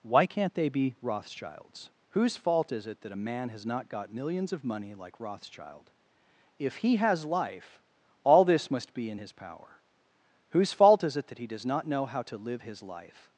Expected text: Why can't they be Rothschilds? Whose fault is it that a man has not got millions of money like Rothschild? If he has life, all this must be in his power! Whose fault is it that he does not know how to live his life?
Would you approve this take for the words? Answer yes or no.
yes